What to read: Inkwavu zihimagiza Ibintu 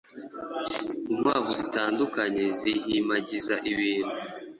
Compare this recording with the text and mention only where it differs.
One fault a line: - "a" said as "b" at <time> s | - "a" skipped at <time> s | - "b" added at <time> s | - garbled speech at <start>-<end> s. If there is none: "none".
- "zitandukanye" added at 1.6 s